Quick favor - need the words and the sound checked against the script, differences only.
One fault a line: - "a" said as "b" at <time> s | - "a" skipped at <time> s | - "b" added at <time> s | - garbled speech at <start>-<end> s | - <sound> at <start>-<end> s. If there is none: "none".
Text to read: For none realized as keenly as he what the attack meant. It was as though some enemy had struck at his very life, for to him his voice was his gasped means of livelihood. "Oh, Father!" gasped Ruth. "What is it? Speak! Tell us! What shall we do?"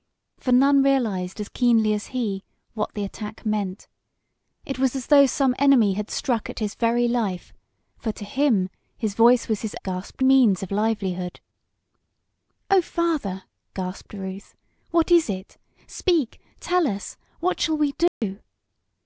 - dropout at 18.1-18.2 s